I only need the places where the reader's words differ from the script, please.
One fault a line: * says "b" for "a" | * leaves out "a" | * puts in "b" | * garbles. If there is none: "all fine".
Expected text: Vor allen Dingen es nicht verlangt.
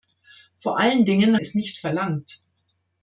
all fine